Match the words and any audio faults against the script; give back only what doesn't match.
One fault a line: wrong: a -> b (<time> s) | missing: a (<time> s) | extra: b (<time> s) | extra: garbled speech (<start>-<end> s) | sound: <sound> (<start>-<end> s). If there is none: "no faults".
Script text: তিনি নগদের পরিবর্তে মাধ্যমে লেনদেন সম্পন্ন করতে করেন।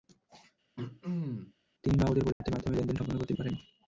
sound: throat clearing (0.8-1.5 s)
sound: dropout (2.3-2.4 s)